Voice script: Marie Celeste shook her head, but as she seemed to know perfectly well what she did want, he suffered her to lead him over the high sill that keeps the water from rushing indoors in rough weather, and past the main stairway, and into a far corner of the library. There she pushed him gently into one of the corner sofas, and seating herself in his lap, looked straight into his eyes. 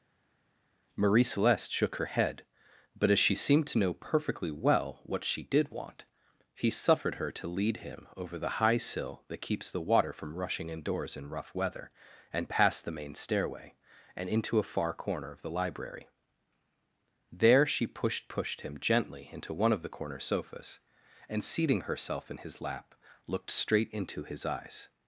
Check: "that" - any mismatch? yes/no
no